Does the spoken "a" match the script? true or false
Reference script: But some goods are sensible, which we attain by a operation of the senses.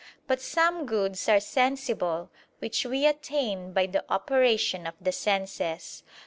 false